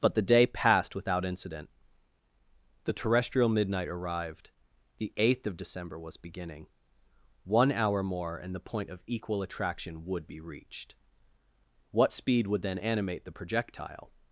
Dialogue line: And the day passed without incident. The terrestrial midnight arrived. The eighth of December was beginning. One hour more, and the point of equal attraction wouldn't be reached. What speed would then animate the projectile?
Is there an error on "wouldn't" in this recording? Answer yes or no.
yes